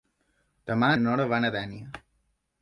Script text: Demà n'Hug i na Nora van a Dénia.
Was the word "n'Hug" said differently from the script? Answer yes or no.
yes